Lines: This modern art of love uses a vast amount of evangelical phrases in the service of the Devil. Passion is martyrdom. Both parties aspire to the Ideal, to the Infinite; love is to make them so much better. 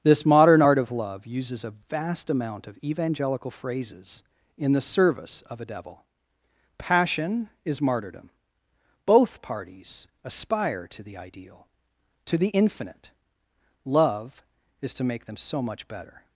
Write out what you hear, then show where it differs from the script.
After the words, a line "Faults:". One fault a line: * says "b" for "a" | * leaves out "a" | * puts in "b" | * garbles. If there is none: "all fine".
This modern art of love uses a vast amount of evangelical phrases in the service of a Devil. Passion is martyrdom. Both parties aspire to the Ideal, to the Infinite; love is to make them so much better.
Faults:
* says "a" for "the"